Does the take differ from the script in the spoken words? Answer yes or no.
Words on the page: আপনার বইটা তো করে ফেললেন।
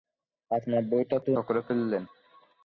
no